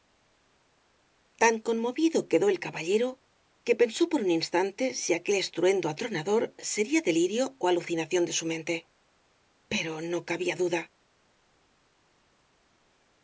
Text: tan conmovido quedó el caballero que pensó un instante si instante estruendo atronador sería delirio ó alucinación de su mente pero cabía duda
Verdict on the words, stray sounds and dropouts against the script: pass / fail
fail